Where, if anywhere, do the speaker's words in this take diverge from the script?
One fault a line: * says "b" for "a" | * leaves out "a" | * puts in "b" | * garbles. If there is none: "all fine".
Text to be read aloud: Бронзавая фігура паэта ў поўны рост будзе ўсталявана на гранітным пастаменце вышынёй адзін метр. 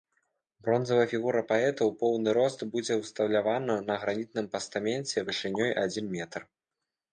all fine